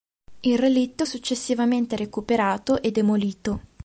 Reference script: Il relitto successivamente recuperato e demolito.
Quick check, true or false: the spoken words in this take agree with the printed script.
true